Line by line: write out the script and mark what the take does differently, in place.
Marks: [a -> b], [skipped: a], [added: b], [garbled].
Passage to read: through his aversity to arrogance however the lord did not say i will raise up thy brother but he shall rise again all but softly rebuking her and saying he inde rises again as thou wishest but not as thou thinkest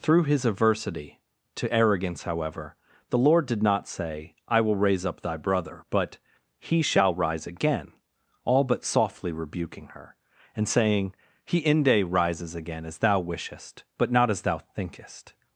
through his aversity to arrogance however the lord did not say i will raise up thy brother but he shall rise again all but softly rebuking her and saying he inde rises again as thou wishest but not as thou thinkest